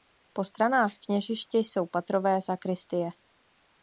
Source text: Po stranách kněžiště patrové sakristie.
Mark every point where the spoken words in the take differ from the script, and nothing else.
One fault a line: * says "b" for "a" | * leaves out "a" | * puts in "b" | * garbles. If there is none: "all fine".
* puts in "jsou"